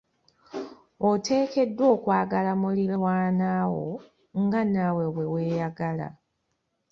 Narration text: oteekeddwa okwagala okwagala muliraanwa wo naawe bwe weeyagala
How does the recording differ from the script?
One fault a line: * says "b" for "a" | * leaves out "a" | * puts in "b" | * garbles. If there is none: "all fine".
* leaves out "okwagala"
* puts in "nga"